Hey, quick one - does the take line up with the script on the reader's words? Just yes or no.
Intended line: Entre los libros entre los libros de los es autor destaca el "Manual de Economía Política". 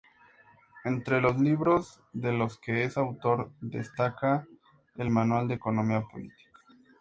no